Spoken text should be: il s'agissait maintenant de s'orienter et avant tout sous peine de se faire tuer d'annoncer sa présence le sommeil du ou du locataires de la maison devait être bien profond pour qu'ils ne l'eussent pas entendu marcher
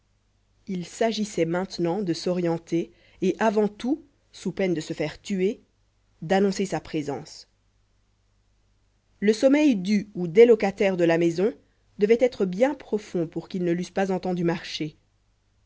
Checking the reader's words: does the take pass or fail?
fail